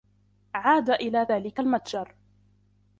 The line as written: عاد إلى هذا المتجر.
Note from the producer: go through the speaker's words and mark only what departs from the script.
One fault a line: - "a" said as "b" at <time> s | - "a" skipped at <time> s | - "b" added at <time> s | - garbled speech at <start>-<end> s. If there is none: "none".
- "هذا" said as "ذلك" at 1.3 s